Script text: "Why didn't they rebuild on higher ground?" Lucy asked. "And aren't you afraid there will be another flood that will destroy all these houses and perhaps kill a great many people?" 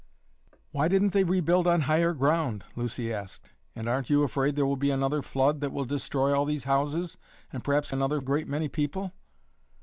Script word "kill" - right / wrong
wrong